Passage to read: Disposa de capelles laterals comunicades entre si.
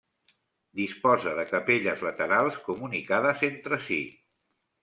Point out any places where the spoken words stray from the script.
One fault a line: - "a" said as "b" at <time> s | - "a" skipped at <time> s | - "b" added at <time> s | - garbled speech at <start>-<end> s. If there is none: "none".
none